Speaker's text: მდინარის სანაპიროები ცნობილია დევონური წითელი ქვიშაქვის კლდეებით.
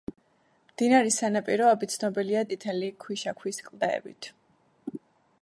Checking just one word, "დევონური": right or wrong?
wrong